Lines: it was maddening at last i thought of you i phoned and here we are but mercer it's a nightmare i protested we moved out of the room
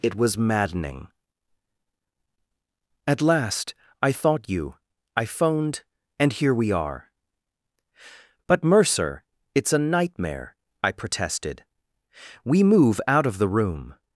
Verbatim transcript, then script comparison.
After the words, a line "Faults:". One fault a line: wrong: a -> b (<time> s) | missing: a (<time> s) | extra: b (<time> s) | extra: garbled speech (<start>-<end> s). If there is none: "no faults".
it was maddening at last i thought you i phoned and here we are but mercer it's a nightmare i protested we move out of the room
Faults:
missing: of (4.5 s)
wrong: moved -> move (12.6 s)